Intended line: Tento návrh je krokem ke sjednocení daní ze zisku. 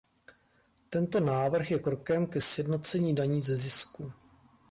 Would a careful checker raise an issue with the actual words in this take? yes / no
no